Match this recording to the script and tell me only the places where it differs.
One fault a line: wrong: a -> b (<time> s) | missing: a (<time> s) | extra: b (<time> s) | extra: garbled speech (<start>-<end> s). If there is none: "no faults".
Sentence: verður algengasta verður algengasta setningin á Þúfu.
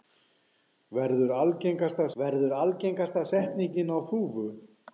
no faults